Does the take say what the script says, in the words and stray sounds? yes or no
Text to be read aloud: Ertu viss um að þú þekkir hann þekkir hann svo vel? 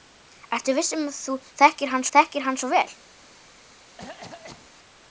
no